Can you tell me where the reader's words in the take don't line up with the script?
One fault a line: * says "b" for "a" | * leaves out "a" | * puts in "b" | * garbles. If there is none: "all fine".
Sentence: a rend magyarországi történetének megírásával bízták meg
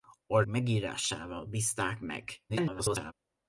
* leaves out "rend magyarországi történetének"
* garbles